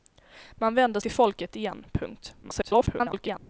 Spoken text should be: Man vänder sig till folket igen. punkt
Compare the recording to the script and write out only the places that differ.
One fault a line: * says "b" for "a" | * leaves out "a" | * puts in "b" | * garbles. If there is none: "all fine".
* leaves out "sig"
* garbles